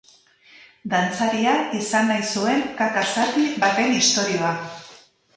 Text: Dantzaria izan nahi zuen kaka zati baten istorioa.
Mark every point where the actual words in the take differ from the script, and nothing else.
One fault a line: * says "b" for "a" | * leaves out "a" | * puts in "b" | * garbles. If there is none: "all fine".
all fine